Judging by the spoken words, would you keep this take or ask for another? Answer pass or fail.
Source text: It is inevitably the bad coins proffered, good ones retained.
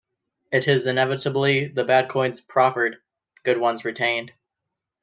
pass